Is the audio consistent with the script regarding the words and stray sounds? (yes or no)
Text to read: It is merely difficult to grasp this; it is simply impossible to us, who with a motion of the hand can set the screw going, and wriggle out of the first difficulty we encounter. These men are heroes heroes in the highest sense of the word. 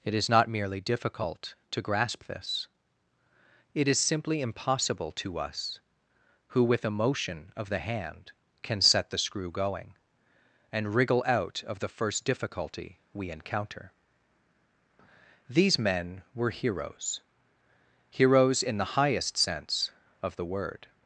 no